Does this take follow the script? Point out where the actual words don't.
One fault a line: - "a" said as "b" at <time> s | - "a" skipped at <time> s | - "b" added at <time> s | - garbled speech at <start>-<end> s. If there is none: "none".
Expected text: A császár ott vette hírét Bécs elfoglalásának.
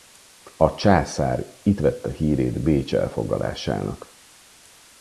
- "ott" said as "itt" at 1.6 s